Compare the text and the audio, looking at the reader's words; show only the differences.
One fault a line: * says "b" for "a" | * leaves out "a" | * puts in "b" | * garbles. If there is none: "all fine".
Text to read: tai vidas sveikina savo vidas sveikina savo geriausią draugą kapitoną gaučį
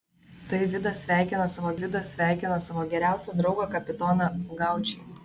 all fine